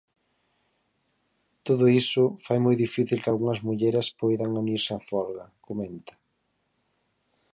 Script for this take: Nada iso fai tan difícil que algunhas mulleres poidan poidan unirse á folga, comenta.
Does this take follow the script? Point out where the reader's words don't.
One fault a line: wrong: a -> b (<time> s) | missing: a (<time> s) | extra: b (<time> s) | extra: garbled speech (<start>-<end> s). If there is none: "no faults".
wrong: Nada -> Todo (1.7 s)
wrong: tan -> moi (2.6 s)
missing: poidan (4.6 s)